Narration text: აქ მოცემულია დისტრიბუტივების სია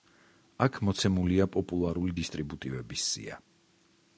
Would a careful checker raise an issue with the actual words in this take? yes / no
yes